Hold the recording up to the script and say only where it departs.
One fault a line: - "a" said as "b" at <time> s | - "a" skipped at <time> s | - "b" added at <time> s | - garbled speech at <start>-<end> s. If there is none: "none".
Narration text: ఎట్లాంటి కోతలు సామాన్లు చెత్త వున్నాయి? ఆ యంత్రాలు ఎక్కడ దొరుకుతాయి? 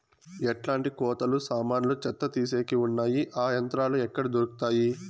- "తీసేకి" added at 2.3 s